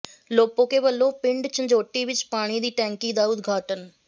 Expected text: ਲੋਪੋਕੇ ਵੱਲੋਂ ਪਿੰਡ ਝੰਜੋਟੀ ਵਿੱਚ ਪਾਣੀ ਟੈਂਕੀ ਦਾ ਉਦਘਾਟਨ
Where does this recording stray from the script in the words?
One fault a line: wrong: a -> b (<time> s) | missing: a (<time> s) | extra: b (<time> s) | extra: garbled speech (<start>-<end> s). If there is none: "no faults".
extra: ਦੀ (2.6 s)